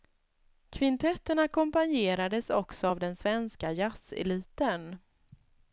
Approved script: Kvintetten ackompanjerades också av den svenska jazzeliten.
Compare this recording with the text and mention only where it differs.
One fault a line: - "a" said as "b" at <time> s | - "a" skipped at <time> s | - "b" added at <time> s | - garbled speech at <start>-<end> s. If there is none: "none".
none